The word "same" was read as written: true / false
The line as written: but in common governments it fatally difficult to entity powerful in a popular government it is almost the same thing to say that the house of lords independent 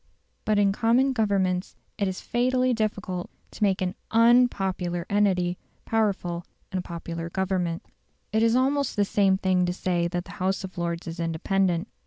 true